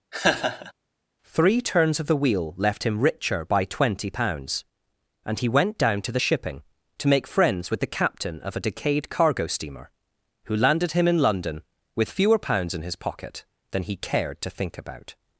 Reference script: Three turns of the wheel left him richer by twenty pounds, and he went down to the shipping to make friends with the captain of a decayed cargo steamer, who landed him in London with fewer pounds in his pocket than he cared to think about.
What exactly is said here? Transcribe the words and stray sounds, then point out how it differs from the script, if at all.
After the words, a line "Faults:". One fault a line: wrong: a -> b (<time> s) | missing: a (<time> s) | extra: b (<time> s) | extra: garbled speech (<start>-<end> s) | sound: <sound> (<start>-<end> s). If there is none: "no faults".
Three turns of the wheel left him richer by twenty pounds, and he went down to the shipping to make friends with the captain of a decayed cargo steamer, who landed him in London with fewer pounds in his pocket than he cared to think about.
Faults:
sound: laugh (0.1-0.7 s)